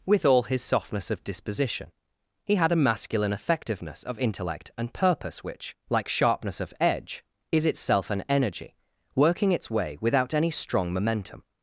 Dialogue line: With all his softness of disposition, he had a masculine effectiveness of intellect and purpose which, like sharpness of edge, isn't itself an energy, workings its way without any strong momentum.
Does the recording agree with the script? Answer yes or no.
no